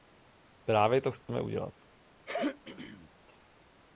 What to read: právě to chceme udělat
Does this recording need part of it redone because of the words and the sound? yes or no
yes